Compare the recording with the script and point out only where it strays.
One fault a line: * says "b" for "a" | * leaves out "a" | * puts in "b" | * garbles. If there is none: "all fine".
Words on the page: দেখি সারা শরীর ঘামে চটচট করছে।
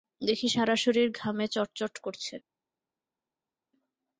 all fine